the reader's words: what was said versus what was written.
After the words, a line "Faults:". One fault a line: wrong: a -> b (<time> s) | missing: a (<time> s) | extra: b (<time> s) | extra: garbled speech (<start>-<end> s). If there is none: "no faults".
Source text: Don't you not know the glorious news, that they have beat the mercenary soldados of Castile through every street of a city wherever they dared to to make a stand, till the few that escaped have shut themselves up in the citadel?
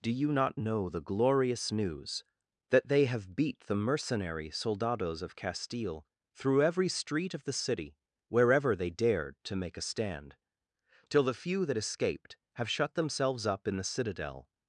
Do you not know the glorious news, that they have beat the mercenary soldados of Castile through every street of the city wherever they dared to make a stand, till the few that escaped have shut themselves up in the citadel?
Faults:
wrong: Don't -> Do (0.0 s)
wrong: a -> the (7.4 s)
missing: to (9.6 s)